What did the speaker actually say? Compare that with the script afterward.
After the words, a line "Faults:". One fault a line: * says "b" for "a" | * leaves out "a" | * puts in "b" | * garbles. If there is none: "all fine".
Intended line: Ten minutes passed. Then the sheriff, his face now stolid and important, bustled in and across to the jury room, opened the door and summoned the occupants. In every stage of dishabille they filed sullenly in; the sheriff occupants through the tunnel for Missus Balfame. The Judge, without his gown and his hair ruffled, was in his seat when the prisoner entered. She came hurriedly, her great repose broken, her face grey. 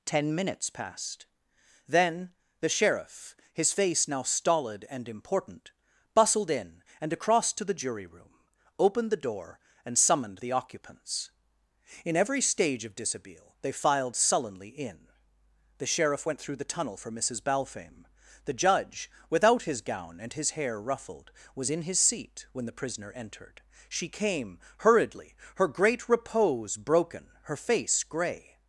Ten minutes passed. Then the sheriff, his face now stolid and important, bustled in and across to the jury room, opened the door and summoned the occupants. In every stage of dishabille they filed sullenly in; the sheriff went through the tunnel for Missus Balfame. The Judge, without his gown and his hair ruffled, was in his seat when the prisoner entered. She came hurriedly, her great repose broken, her face grey.
Faults:
* says "went" for "occupants"